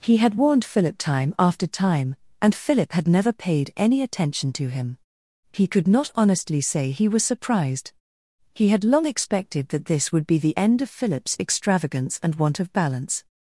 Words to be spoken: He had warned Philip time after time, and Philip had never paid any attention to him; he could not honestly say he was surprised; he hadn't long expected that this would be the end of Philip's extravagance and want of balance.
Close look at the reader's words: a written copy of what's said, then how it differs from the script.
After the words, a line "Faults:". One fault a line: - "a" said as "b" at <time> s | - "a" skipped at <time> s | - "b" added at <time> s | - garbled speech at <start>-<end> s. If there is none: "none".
He had warned Philip time after time, and Philip had never paid any attention to him; he could not honestly say he was surprised; he had long expected that this would be the end of Philip's extravagance and want of balance.
Faults:
- "hadn't" said as "had" at 8.7 s